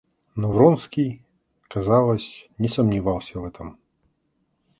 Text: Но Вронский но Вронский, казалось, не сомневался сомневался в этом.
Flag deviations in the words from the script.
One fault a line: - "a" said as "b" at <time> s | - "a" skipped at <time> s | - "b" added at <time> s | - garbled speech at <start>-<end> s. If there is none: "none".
- "но Вронский" skipped at 1.2 s
- "сомневался" skipped at 3.4 s